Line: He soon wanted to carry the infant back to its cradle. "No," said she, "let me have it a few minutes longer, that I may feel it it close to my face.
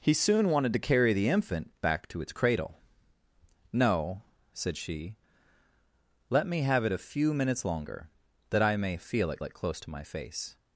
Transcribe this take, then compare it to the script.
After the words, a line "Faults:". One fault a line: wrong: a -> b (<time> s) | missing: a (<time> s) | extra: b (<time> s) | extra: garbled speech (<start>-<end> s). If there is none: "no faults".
He soon wanted to carry the infant back to its cradle. "No," said she, "let me have it a few minutes longer, that I may feel it it close to my face.
Faults:
no faults